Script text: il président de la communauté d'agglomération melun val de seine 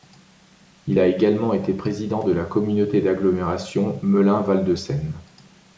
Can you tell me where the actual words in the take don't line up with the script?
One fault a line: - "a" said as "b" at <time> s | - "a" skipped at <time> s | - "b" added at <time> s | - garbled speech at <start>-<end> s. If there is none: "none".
- "a également été" added at 1.0 s